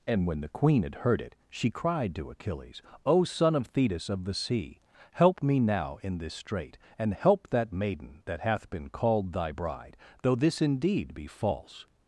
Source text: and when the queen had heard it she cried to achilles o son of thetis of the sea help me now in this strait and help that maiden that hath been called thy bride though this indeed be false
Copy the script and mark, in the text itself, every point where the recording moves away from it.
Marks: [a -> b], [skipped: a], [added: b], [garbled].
and when the queen had heard it she cried to achilles o son of thetis of the sea help me now in this strait and help that maiden that hath been called thy bride though this indeed be false